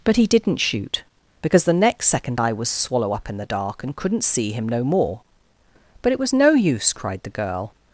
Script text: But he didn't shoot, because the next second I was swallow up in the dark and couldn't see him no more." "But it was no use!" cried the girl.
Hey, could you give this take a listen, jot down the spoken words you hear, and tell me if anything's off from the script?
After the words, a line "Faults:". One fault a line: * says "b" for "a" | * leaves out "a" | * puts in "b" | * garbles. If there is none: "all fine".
But he didn't shoot, because the next second I was swallow up in the dark and couldn't see him no more." "But it was no use!" cried the girl.
Faults:
all fine